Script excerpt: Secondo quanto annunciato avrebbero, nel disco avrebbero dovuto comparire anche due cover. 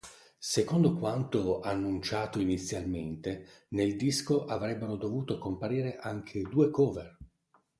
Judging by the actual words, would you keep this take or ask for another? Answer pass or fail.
fail